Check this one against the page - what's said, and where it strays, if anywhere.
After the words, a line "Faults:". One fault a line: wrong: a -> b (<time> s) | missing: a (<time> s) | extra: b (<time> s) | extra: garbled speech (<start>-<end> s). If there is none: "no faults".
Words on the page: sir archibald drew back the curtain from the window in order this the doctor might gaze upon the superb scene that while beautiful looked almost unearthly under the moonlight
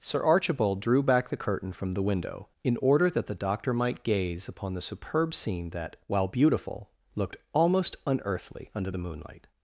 sir archibald drew back the curtain from the window in order that the doctor might gaze upon the superb scene that while beautiful looked almost unearthly under the moonlight
Faults:
wrong: this -> that (3.1 s)